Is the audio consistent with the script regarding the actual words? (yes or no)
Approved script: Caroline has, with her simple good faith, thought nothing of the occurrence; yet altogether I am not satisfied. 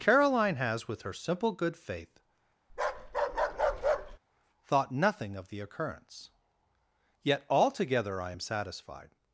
no